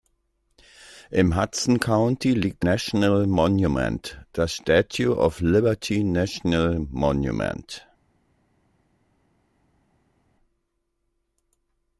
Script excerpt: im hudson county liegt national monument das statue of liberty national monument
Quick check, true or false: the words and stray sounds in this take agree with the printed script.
true